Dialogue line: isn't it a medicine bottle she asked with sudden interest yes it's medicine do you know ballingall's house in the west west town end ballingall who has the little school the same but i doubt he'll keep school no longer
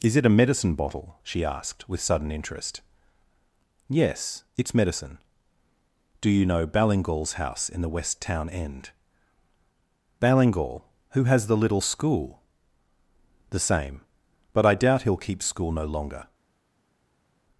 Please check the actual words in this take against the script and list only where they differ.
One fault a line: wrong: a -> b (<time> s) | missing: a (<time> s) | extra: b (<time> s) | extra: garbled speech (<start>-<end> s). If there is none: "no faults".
wrong: isn't -> is (0.0 s)
missing: west (8.2 s)